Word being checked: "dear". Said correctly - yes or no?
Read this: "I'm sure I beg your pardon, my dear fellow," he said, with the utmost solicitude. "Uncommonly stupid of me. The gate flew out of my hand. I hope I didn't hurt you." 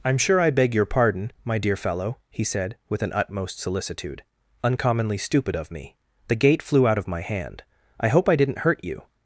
yes